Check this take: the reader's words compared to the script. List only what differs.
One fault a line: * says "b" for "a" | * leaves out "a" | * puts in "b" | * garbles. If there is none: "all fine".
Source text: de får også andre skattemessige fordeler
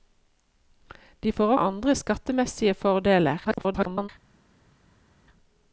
* leaves out "også"
* garbles